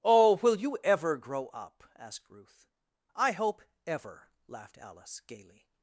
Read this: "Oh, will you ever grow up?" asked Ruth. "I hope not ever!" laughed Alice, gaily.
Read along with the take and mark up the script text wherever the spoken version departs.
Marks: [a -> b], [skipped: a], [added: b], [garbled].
"Oh, will you ever grow up?" asked Ruth. "I hope [skipped: not] ever!" laughed Alice, gaily.